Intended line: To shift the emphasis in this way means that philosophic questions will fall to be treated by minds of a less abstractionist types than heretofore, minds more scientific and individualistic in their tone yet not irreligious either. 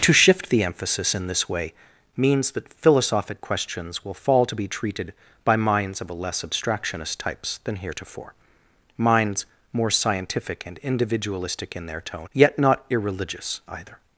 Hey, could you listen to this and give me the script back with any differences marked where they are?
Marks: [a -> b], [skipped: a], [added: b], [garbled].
To shift the emphasis in this way means that philosophic questions will fall to be treated by minds of a less abstractionist types than heretofore, minds more scientific and individualistic in their tone yet not irreligious either.